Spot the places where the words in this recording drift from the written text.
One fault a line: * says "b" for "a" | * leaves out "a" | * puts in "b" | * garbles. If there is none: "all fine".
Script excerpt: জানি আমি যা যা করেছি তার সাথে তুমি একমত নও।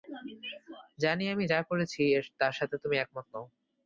* leaves out "যা"